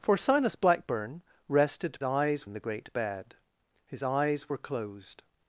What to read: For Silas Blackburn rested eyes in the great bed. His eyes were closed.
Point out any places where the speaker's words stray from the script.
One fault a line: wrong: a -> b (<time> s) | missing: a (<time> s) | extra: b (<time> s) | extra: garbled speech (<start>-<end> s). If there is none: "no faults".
no faults